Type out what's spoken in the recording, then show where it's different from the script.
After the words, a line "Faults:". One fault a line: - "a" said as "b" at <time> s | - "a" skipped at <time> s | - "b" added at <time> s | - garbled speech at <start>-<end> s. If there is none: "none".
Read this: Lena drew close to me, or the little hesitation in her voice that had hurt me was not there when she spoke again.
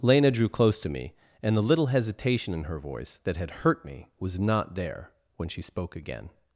Lena drew close to me, and the little hesitation in her voice that had hurt me was not there when she spoke again.
Faults:
- "or" said as "and" at 1.4 s